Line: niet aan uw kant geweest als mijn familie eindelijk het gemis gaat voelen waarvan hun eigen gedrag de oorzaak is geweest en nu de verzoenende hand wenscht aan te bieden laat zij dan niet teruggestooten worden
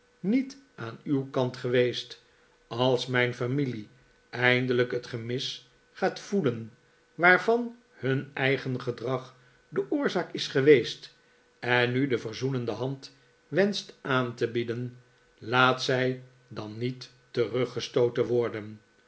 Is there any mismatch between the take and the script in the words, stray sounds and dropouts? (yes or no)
no